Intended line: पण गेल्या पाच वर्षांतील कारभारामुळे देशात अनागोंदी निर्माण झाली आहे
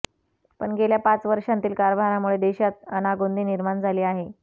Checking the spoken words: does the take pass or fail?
pass